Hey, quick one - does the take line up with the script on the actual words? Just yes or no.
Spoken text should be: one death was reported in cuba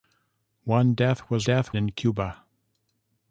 no